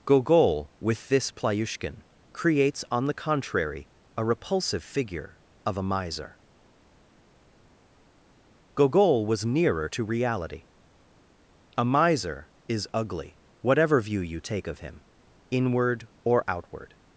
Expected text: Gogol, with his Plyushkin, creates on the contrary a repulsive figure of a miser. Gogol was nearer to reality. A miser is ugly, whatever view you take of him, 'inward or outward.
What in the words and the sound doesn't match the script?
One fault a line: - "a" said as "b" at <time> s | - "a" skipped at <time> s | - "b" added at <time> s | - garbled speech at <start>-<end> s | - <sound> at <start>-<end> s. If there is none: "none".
- "his" said as "this" at 1.1 s